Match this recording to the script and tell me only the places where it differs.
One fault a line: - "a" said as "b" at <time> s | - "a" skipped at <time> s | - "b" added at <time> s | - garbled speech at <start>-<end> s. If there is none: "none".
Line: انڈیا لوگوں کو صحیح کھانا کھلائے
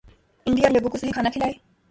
none